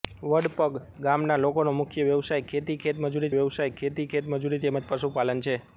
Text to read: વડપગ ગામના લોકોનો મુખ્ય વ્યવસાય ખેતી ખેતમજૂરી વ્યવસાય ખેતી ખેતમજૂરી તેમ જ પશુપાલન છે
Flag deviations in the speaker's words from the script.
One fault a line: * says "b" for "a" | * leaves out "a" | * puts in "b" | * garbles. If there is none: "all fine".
all fine